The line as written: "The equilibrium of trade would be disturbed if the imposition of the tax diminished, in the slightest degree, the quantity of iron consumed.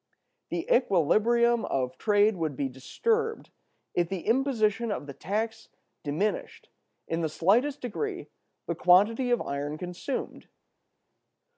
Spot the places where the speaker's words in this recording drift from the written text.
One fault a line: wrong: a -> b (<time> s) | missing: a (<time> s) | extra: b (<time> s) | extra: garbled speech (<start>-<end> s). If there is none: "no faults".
no faults